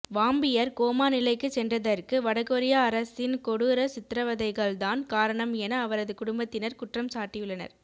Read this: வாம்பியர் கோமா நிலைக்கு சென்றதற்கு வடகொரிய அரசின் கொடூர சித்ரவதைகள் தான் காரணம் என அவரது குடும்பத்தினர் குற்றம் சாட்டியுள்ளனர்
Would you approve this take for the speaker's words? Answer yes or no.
yes